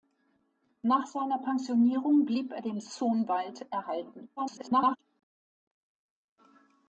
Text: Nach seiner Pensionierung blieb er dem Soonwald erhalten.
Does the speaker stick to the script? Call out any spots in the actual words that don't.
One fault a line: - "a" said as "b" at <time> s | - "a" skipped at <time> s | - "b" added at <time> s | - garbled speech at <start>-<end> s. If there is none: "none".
- garbled speech at 4.4-5.0 s